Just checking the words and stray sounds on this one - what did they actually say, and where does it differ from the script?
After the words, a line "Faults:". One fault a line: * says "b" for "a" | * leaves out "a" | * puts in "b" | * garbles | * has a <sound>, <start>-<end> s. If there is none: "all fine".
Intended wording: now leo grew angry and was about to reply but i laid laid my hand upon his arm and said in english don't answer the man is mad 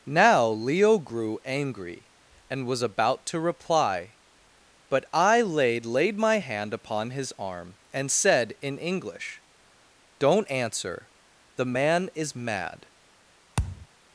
now leo grew angry and was about to reply but i laid laid my hand upon his arm and said in english don't answer the man is mad
Faults:
* has a thud, 13.6-13.9 s